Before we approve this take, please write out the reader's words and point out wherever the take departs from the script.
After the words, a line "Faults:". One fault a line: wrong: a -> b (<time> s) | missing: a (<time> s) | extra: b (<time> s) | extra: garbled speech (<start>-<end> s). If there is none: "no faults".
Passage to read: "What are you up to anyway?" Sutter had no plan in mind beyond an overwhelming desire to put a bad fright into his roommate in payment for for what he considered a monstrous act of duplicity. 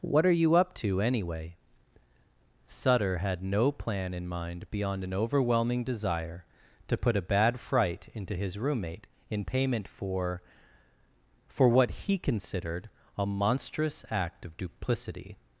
"What are you up to anyway?" Sutter had no plan in mind beyond an overwhelming desire to put a bad fright into his roommate in payment for for what he considered a monstrous act of duplicity.
Faults:
no faults